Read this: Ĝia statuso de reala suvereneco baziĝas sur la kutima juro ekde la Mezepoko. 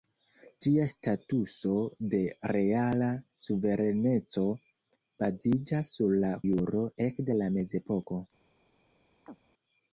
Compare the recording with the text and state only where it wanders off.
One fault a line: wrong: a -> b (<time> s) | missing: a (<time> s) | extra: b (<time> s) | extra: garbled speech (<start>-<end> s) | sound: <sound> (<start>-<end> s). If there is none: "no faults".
missing: kutima (6.3 s)
sound: chirp (9.2-9.4 s)